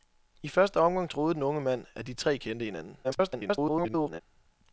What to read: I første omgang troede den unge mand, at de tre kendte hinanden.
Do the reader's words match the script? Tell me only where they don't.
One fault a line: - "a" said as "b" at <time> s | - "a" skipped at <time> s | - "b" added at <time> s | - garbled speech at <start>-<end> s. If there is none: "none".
- garbled speech at 3.0-4.2 s